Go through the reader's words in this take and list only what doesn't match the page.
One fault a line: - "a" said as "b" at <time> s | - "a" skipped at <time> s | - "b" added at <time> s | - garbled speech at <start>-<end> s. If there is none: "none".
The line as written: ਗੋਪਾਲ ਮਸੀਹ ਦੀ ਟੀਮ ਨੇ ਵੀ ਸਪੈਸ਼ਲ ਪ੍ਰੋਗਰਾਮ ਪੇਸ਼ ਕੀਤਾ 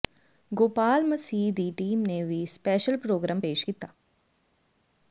none